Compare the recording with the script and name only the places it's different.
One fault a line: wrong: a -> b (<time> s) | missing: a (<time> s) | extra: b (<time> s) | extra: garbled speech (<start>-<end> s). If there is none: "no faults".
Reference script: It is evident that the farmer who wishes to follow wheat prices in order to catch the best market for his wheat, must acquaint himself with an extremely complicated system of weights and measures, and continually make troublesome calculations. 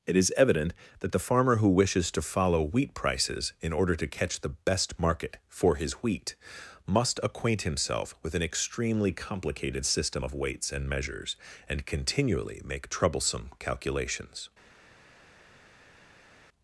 no faults